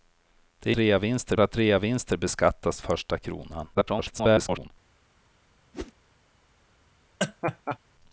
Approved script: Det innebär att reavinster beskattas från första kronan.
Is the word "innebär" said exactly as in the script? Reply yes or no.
no